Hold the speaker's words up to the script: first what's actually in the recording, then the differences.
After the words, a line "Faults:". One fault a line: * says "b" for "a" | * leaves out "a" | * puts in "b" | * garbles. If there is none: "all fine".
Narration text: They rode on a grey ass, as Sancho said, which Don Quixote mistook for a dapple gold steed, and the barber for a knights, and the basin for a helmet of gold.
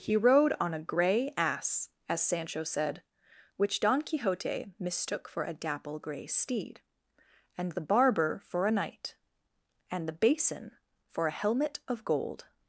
He rode on a grey ass, as Sancho said, which Don Quixote mistook for a dapple grey steed, and the barber for a knight, and the basin for a helmet of gold.
Faults:
* says "He" for "They"
* says "grey" for "gold"
* says "knight" for "knights"